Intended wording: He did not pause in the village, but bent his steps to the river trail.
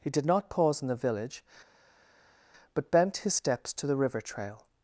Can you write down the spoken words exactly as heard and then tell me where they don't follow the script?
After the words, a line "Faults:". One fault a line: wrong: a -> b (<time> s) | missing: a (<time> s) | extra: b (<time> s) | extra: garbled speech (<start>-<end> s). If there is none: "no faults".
He did not pause in the village, but bent his steps to the river trail.
Faults:
no faults